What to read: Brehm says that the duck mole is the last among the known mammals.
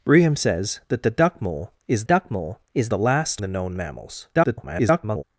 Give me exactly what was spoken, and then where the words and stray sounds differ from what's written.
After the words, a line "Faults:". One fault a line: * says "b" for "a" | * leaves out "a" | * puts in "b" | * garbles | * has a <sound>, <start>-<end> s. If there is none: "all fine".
Brehm says that the duck mole is duck mole is the last the known mammals. [garbled]
Faults:
* puts in "duck mole is"
* leaves out "among"
* garbles